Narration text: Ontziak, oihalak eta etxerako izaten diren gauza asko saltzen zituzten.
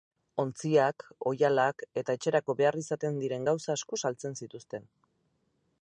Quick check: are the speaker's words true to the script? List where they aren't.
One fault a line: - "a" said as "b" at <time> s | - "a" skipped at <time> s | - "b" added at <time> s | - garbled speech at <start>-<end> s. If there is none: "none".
- "behar" added at 2.6 s